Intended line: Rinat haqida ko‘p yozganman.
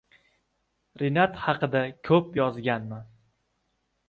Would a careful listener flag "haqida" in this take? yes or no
no